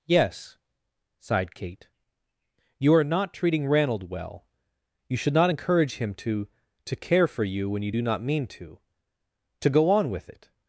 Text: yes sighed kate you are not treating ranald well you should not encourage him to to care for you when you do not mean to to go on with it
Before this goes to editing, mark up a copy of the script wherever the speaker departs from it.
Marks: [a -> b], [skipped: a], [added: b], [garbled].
yes sighed kate you are not treating ranald well you should not encourage him to to care for you when you do not mean to to go on with it